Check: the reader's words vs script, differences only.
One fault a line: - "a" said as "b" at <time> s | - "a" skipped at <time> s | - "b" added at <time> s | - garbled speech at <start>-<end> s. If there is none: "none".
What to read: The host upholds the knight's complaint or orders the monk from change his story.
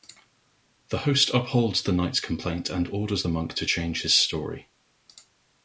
- "or" said as "and" at 2.7 s
- "from" said as "to" at 3.5 s